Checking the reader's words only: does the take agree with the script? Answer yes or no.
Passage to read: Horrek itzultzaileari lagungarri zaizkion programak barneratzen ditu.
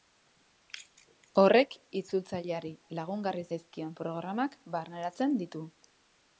yes